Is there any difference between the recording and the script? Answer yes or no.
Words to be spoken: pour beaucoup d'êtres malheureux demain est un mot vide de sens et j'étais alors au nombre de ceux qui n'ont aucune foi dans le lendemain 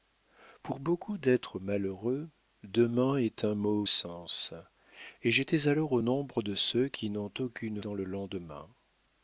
yes